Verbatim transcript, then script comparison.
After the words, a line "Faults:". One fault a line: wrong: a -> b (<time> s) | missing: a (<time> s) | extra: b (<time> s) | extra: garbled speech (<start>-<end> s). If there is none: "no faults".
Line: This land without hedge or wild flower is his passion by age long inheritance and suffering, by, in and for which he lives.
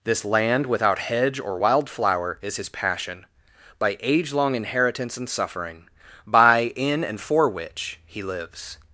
This land without hedge or wild flower is his passion by age long inheritance and suffering, by, in and for which he lives.
Faults:
no faults